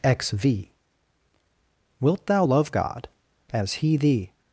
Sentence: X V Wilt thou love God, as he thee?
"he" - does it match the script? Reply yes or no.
yes